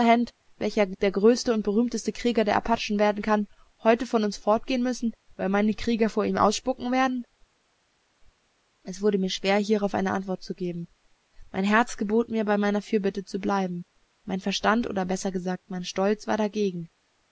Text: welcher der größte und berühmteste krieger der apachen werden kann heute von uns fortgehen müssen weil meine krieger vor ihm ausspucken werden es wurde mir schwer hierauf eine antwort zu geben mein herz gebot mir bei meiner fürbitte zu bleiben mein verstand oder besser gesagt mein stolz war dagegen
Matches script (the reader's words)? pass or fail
pass